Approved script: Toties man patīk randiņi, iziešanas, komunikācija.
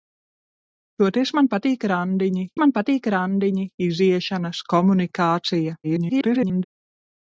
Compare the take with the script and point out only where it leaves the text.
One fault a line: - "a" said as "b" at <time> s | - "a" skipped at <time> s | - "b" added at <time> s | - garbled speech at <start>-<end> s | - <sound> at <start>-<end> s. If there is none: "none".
- "man patīk randiņi" added at 2.6 s
- garbled speech at 5.8-6.6 s